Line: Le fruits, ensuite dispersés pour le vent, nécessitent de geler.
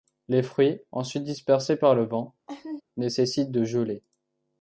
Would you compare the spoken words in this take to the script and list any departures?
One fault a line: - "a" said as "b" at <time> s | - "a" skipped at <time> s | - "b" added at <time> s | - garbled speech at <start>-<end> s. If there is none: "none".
- "Le" said as "Les" at 0.3 s
- "pour" said as "par" at 1.8 s